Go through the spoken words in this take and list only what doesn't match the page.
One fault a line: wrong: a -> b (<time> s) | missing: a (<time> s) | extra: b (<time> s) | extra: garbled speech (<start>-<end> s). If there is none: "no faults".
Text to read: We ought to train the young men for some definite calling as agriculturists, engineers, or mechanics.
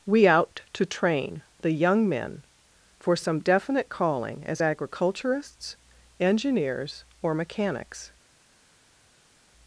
wrong: ought -> out (0.3 s)